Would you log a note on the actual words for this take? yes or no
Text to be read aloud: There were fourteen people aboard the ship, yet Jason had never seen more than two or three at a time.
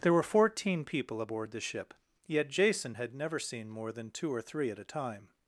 no